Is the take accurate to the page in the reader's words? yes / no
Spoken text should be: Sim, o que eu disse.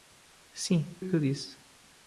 yes